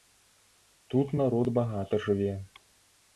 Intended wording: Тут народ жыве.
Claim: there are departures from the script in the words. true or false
true